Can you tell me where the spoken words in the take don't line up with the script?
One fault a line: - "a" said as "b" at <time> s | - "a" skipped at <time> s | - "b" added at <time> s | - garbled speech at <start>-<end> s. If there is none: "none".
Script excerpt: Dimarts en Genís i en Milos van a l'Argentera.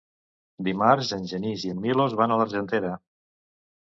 none